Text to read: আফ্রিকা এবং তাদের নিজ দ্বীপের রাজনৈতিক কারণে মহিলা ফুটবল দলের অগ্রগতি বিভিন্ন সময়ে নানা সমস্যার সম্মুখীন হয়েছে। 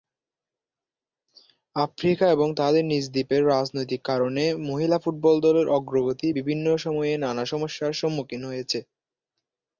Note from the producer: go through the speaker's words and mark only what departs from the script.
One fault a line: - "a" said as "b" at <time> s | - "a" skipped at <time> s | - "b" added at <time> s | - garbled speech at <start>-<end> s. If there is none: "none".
none